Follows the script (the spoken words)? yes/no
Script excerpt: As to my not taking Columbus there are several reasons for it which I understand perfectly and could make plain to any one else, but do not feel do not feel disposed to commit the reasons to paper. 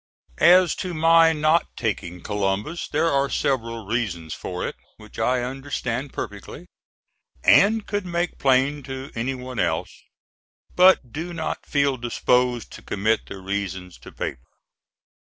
no